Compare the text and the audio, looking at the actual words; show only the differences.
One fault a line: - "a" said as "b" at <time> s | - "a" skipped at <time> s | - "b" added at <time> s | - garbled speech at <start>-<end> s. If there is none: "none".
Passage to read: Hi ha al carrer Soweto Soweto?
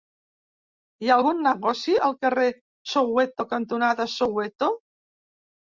- "algun negoci" added at 1.2 s
- "cantonada" added at 3.6 s